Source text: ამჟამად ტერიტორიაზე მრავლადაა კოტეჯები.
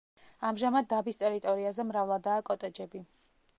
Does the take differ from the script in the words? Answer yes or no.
yes